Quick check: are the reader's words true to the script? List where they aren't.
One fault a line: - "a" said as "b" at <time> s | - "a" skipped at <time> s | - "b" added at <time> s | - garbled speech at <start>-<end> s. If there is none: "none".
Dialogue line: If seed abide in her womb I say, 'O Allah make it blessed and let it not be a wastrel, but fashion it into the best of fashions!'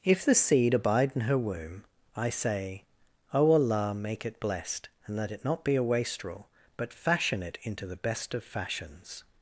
- "the" added at 0.2 s